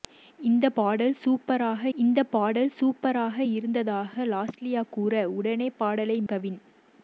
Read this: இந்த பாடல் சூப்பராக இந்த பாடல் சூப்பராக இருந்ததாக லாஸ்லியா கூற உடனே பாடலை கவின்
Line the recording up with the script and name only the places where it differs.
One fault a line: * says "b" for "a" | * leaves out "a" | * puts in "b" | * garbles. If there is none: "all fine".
all fine